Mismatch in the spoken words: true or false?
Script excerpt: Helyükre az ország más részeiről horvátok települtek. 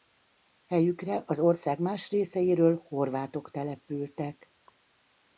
false